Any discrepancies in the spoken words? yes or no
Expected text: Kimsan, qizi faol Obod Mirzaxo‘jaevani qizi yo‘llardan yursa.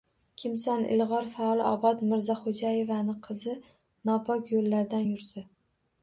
yes